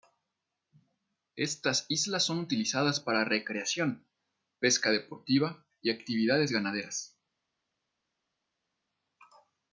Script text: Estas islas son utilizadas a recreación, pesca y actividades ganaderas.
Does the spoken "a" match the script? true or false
false